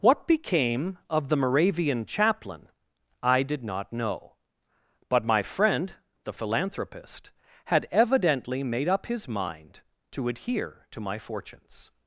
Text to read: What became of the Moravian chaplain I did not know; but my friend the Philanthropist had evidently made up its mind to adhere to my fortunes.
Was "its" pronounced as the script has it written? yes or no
no